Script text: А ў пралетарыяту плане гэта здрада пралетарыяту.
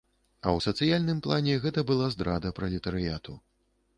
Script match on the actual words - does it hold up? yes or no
no